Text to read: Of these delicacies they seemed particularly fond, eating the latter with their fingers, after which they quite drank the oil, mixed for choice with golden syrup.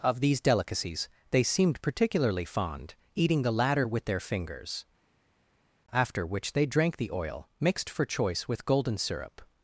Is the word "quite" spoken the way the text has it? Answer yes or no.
no